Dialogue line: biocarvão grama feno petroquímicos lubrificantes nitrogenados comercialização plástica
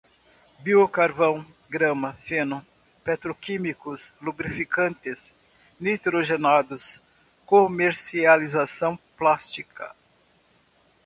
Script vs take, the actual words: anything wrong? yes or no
no